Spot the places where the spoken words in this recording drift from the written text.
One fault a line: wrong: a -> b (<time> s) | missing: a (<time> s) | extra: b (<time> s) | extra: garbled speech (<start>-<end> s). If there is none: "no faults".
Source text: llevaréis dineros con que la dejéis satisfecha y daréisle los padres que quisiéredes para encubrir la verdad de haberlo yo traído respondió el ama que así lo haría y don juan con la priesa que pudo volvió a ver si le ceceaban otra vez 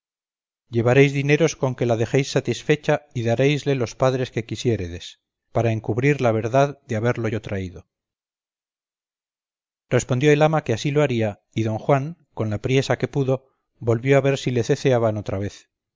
no faults